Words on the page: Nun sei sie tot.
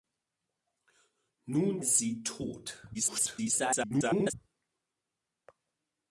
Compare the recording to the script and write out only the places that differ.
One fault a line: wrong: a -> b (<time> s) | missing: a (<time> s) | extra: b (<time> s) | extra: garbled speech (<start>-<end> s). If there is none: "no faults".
missing: sei (1.8 s)
extra: garbled speech (2.9-4.3 s)